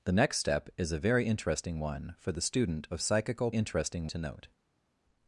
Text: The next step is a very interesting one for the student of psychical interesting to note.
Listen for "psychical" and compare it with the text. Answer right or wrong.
right